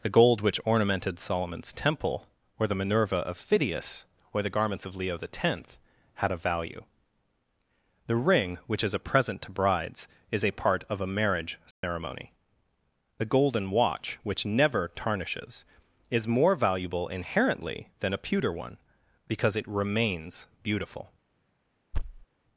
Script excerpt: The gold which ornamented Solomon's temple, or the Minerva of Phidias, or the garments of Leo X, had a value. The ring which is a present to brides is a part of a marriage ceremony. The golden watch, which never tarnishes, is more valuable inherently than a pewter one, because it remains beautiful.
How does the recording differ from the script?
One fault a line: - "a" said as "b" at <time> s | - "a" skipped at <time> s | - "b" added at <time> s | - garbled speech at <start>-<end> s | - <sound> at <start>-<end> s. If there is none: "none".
- dropout at 11.7-11.8 s
- thud at 21.9-22.3 s